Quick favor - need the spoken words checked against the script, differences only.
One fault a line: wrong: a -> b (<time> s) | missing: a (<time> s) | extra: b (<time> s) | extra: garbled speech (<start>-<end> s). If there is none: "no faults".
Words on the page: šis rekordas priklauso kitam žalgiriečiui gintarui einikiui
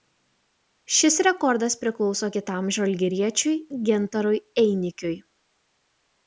no faults